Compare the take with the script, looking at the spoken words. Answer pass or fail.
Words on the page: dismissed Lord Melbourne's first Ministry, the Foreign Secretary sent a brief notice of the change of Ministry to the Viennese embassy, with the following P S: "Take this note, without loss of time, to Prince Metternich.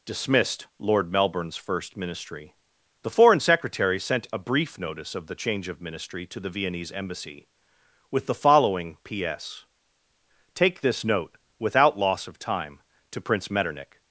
pass